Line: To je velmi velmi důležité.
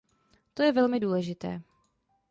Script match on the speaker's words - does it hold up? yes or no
no